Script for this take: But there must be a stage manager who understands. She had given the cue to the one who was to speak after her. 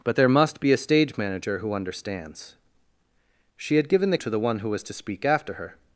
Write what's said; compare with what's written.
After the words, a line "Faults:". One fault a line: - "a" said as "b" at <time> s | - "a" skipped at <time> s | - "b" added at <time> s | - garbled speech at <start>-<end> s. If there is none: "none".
But there must be a stage manager who understands. She had given the to the one who was to speak after her.
Faults:
- "cue" skipped at 4.2 s